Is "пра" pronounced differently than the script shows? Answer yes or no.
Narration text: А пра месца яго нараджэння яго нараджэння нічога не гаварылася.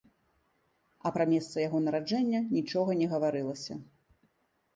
no